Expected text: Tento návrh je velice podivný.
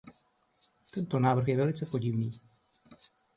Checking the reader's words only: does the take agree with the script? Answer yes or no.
yes